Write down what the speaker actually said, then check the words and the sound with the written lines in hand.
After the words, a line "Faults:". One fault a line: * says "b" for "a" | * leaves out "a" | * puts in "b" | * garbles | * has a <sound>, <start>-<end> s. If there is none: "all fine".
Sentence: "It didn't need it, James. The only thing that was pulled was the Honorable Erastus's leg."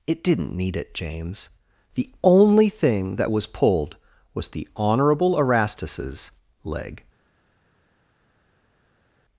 "It didn't need it, James. The only thing that was pulled was the Honorable Erastus's leg."
Faults:
all fine